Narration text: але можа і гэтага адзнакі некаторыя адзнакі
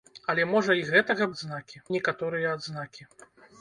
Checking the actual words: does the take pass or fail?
pass